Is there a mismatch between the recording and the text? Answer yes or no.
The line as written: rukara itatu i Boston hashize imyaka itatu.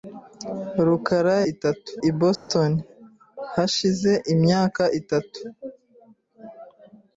no